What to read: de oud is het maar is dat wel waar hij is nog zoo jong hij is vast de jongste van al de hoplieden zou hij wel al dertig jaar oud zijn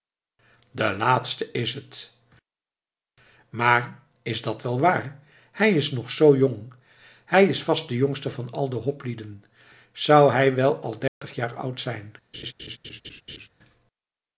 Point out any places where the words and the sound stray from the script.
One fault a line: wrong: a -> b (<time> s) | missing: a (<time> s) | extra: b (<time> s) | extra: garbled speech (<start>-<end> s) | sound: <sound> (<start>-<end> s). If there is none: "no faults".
wrong: oud -> laatste (1.0 s)
sound: dropout (11.1-11.2 s)
sound: laugh (12.3-13.5 s)